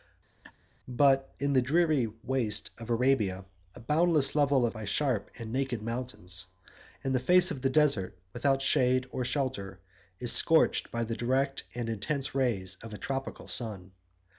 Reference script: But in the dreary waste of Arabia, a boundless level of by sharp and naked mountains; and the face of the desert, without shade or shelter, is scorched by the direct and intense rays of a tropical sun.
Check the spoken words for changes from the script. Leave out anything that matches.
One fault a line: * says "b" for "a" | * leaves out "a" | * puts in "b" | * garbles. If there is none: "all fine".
all fine